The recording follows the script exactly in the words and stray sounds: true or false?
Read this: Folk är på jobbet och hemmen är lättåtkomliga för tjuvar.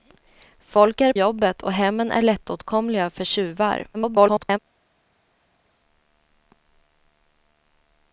false